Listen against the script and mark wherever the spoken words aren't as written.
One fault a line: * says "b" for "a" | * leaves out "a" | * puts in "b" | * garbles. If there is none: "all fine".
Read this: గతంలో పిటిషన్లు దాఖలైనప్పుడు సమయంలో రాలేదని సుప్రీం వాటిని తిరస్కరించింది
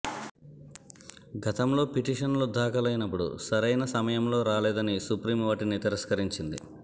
* puts in "సరైన"